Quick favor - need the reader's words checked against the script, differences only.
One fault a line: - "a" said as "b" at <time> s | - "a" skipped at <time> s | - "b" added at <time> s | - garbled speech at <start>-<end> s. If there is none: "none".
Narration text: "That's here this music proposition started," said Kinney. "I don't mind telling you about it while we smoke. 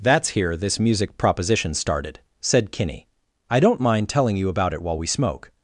none